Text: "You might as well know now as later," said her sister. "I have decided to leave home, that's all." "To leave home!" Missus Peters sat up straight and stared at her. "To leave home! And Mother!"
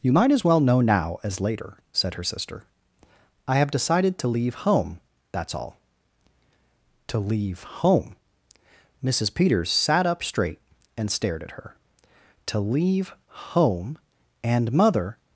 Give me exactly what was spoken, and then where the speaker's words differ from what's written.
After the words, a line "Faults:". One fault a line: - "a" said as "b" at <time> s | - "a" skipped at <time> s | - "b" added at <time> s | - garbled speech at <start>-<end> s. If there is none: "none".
"You might as well know now as later," said her sister. "I have decided to leave home, that's all." "To leave home!" Missus Peters sat up straight and stared at her. "To leave home! And Mother!"
Faults:
none